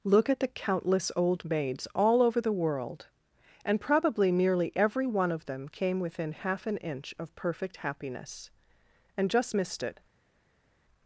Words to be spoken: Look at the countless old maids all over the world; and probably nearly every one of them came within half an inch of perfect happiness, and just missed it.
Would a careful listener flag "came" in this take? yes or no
no